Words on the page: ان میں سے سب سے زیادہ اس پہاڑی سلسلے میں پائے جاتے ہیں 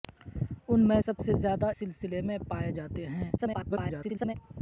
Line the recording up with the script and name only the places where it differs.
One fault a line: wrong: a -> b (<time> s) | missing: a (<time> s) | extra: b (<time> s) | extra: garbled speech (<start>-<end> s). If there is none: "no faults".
missing: سے (1.0 s)
missing: اس پہاڑی (1.7 s)
extra: garbled speech (3.4-4.3 s)